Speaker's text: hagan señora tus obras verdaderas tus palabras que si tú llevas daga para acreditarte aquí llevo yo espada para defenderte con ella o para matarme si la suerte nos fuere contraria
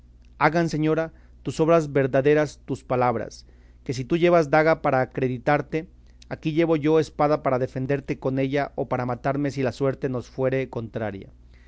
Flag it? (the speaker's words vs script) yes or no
no